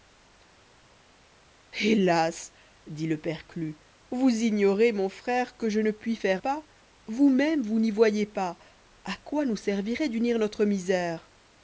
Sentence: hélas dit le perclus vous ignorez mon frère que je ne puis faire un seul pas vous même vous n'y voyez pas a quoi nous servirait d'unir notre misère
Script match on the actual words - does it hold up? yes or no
no